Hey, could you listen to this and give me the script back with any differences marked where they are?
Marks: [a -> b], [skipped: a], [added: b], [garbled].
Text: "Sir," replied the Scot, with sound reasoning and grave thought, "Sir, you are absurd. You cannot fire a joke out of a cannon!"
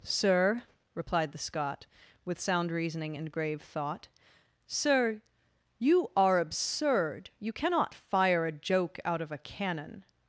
"Sir," replied the Scot, with sound reasoning and grave thought, "Sir, you are absurd. You cannot fire a joke out of a cannon!"